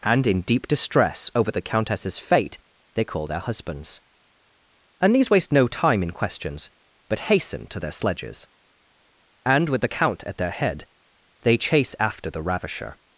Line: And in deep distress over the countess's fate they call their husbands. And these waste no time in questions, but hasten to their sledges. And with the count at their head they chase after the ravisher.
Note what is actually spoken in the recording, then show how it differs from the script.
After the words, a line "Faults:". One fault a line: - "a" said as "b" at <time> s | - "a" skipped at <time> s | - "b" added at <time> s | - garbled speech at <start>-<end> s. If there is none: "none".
And in deep distress over the countess's fate they call their husbands. And these waste no time in questions, but hasten to their sledges. And with the count at their head they chase after the ravisher.
Faults:
none